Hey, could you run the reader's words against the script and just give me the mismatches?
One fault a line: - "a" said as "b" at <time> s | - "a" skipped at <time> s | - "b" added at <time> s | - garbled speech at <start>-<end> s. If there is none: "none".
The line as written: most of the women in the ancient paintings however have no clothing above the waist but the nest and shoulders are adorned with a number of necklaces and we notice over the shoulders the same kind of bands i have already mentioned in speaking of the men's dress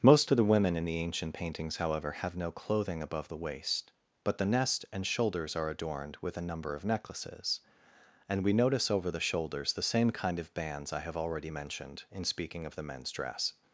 none